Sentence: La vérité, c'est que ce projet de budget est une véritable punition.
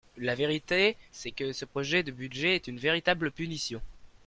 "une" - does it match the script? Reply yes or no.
yes